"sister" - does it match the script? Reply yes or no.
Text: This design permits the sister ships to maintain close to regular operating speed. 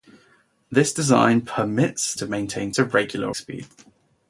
no